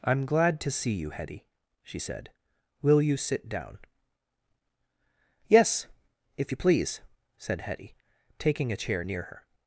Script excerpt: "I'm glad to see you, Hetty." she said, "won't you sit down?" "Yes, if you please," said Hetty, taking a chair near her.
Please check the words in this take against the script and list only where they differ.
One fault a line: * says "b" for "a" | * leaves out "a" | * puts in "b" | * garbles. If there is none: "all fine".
* says "will" for "won't"